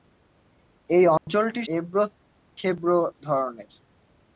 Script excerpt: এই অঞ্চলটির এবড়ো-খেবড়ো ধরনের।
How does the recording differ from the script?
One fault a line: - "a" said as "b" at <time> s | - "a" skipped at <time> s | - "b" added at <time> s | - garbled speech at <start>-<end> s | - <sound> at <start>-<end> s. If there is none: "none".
- dropout at 1.2-1.3 s